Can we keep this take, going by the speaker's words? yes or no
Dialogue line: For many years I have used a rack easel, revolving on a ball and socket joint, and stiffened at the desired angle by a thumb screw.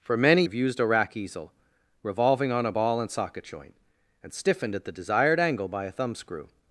no